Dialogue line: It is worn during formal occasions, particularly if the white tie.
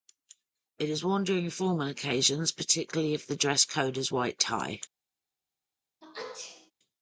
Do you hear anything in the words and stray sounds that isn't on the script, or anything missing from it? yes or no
yes